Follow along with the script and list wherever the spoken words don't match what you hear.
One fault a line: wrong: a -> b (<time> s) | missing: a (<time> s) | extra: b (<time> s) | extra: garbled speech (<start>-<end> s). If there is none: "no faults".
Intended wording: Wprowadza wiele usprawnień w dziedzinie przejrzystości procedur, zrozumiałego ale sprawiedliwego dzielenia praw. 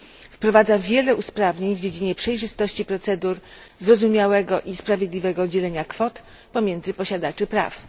wrong: ale -> i (4.6 s)
extra: kwot pomiędzy posiadaczy (5.8 s)